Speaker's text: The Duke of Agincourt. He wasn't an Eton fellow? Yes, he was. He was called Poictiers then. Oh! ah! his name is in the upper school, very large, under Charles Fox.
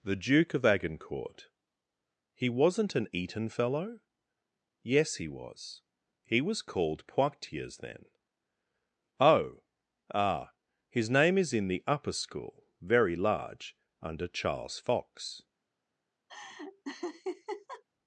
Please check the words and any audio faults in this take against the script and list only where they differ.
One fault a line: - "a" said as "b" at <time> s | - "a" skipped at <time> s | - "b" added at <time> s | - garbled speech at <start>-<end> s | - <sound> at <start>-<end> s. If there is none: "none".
- laugh at 16.3-17.8 s